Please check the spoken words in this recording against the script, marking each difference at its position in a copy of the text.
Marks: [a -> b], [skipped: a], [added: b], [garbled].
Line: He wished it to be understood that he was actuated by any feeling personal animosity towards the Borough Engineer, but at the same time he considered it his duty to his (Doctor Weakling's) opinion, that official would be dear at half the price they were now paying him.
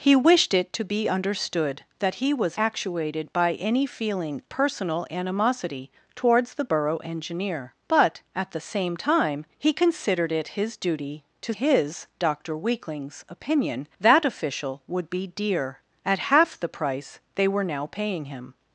He wished it to be understood that he was actuated by any feeling personal animosity towards the Borough Engineer, but at the same time he considered it his duty to his (Doctor Weakling's) opinion, that official would be dear at half the price they were now paying him.